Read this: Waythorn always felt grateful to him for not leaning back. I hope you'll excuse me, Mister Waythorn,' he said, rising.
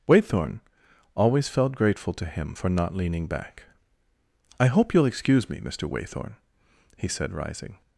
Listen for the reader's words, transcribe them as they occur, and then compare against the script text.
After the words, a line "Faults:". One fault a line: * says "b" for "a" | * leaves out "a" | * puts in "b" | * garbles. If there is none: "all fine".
Waythorn always felt grateful to him for not leaning back. I hope you'll excuse me, Mister Waythorn,' he said, rising.
Faults:
all fine